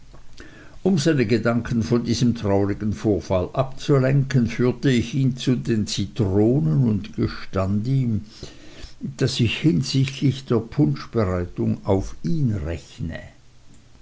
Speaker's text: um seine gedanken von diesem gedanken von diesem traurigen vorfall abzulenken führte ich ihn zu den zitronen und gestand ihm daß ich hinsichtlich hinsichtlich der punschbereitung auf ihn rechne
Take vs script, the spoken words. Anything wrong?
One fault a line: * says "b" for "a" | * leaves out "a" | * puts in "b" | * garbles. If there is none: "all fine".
* leaves out "gedanken von diesem"
* leaves out "hinsichtlich"